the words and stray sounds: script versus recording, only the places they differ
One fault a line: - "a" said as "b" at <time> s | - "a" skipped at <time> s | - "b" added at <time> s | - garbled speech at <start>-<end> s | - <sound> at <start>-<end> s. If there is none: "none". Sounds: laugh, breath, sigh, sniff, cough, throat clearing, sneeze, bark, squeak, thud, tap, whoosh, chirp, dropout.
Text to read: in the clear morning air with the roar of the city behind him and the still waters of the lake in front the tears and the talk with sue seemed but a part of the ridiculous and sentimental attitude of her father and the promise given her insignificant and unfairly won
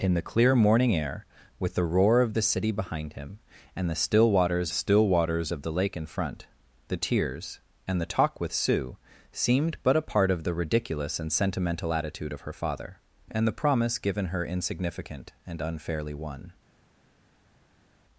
- "still waters" added at 4.7 s